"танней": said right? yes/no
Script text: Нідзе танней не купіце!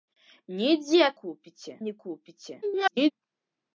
no